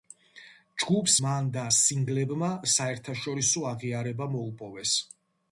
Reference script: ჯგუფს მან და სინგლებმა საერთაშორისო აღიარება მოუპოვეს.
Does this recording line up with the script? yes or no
yes